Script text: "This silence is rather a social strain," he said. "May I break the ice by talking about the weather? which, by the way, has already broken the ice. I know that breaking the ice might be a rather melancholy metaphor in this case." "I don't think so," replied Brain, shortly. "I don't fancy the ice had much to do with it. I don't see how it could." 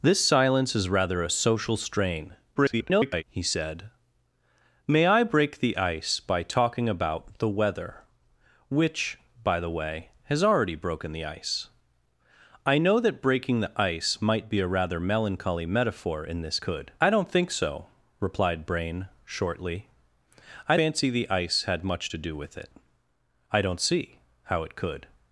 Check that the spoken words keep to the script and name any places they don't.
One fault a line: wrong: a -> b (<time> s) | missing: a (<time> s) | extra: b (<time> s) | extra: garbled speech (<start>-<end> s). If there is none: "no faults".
extra: garbled speech (2.6-3.2 s)
wrong: case -> could (16.6 s)
missing: don't (20.8 s)